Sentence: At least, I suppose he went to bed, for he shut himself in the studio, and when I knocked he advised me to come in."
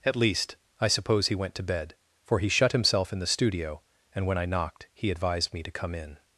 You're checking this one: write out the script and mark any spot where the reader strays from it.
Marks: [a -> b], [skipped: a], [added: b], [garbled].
At least, I suppose he went to bed, for he shut himself in the studio, and when I knocked he advised me to come in."